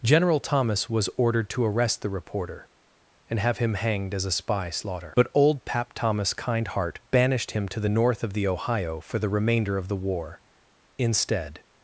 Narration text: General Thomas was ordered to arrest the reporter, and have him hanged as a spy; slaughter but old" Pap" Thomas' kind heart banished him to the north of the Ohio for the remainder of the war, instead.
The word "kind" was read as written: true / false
true